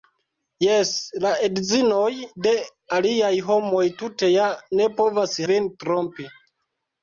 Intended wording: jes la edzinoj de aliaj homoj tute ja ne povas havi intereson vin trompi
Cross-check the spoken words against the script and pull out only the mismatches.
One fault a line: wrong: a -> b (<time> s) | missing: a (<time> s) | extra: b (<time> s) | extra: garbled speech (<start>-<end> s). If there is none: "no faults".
missing: havi intereson (5.4 s)